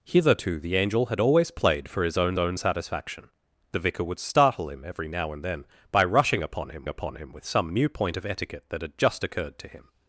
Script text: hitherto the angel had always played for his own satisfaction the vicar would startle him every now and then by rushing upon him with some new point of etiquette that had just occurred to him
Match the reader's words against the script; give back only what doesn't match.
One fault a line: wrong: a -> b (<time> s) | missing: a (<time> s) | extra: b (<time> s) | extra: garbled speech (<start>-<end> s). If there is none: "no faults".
extra: own (2.4 s)
extra: upon him (6.9 s)